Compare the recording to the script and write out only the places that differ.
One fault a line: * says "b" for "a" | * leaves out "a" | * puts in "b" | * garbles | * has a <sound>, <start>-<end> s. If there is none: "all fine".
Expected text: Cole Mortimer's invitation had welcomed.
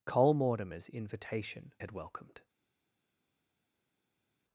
all fine